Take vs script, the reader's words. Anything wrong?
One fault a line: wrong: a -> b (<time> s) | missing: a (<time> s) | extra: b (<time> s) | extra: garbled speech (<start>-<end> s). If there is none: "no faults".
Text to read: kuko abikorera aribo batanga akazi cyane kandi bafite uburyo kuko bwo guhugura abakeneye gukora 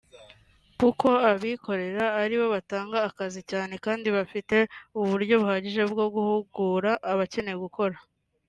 wrong: kuko -> buhagije (5.4 s)